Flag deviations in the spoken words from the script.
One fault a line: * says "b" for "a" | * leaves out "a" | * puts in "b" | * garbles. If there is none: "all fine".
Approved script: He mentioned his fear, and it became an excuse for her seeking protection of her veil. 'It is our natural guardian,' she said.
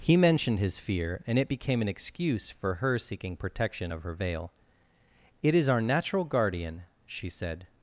all fine